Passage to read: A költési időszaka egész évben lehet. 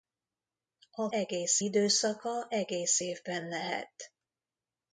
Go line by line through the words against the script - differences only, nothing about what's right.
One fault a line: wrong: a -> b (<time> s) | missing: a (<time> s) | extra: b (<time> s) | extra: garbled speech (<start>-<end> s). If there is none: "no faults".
wrong: költési -> egész (1.1 s)